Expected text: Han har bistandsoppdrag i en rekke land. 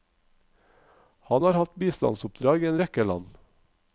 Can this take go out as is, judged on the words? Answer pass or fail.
fail